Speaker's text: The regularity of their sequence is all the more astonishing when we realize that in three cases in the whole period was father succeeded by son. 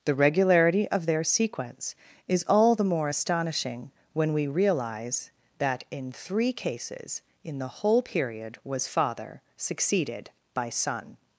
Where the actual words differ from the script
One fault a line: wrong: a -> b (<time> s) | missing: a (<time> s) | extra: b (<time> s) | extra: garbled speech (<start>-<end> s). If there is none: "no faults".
no faults